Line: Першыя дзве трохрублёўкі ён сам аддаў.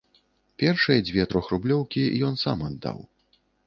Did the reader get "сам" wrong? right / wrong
right